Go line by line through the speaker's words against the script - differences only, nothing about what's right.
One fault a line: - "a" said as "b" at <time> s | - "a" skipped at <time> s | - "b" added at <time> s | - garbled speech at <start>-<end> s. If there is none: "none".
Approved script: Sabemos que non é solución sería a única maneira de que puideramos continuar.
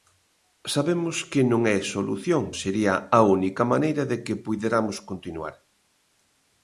none